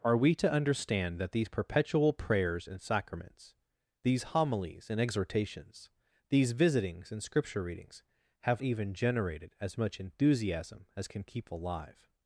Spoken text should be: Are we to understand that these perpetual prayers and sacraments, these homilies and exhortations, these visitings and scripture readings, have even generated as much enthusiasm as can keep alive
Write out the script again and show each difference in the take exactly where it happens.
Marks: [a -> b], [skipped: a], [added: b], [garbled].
Are we to understand that these perpetual prayers and sacraments, these homilies and exhortations, these visitings and scripture readings, have even generated as much enthusiasm as can keep alive